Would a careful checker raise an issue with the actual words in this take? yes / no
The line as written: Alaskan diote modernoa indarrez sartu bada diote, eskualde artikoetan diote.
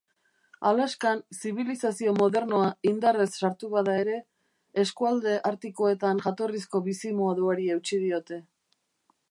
yes